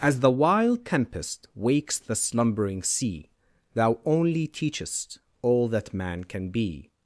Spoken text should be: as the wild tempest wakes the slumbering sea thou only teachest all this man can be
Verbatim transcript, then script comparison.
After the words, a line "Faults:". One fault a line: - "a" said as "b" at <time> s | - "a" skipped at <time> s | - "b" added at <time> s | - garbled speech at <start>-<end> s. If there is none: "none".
as the wild tempest wakes the slumbering sea thou only teachest all that man can be
Faults:
- "this" said as "that" at 5.7 s